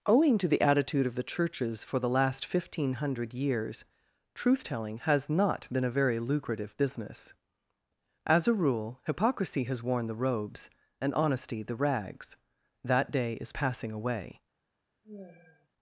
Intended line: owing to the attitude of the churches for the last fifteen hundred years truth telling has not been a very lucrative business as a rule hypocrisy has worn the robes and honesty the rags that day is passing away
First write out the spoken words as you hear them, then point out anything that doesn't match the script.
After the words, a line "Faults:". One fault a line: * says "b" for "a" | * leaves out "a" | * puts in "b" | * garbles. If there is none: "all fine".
owing to the attitude of the churches for the last fifteen hundred years truth telling has not been a very lucrative business as a rule hypocrisy has worn the robes and honesty the rags that day is passing away
Faults:
all fine